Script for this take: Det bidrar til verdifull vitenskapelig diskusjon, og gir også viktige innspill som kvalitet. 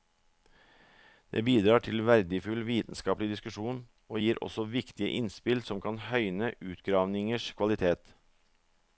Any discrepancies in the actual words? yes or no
yes